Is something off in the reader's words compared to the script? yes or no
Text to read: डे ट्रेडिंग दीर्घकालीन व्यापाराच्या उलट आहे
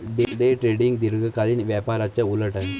no